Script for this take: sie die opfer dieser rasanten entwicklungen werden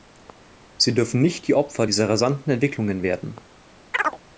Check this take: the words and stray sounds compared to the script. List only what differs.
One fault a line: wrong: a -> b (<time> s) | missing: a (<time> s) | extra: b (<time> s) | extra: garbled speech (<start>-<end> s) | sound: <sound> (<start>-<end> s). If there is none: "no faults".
extra: dürfen nicht (0.9 s)
sound: chirp (3.9-4.2 s)